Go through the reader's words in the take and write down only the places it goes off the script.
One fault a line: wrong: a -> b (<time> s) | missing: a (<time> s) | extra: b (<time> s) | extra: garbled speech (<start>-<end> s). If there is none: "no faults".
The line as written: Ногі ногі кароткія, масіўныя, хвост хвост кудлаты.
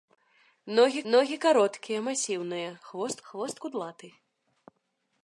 no faults